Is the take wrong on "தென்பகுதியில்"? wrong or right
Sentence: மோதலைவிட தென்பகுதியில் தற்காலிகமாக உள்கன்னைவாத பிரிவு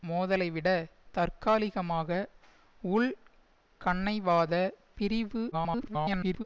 wrong